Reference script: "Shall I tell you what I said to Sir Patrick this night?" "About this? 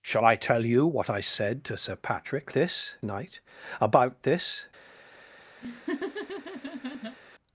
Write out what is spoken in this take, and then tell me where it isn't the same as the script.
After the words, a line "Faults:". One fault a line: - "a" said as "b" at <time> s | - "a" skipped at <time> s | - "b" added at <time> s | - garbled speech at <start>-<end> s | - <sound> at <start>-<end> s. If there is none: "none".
"Shall I tell you what I said to Sir Patrick this night?" "About this?
Faults:
- laugh at 5.6-7.2 s